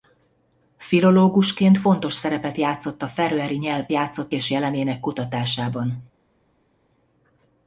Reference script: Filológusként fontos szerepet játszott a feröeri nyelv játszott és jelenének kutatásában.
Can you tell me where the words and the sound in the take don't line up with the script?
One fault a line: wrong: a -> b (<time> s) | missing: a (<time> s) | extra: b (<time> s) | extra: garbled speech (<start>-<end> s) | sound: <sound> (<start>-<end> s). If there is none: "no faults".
no faults